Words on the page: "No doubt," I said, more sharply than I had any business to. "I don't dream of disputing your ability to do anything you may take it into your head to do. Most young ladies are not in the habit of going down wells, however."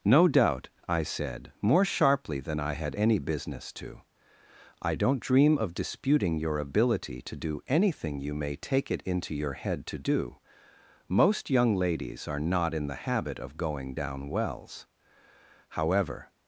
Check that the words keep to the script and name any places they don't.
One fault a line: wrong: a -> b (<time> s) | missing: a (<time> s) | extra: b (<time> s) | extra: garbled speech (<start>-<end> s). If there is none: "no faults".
no faults